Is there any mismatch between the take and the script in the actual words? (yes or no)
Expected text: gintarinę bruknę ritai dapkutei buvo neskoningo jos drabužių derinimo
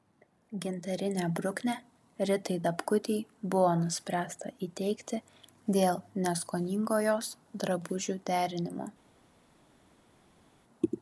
yes